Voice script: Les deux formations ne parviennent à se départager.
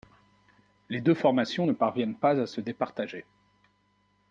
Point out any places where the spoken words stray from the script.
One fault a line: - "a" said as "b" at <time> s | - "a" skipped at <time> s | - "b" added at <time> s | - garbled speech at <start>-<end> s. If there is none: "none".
- "pas" added at 2.1 s